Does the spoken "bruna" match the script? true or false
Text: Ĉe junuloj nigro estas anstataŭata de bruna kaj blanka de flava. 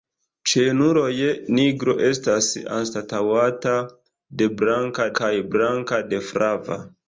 false